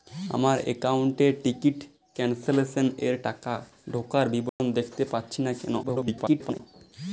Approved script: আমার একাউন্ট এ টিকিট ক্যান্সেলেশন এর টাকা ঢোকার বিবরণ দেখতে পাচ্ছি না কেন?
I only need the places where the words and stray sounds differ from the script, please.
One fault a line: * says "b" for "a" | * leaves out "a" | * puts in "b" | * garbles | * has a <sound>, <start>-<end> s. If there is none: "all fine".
* has a dropout, 4.5-4.6 s
* garbles